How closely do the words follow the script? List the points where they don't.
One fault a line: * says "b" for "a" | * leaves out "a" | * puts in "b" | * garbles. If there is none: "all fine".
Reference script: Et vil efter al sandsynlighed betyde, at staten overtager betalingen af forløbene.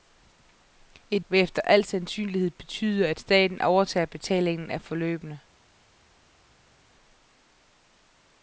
all fine